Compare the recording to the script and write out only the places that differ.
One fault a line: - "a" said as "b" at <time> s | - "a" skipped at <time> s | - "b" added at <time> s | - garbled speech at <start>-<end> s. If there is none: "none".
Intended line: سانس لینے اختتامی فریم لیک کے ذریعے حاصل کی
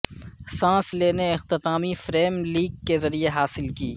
none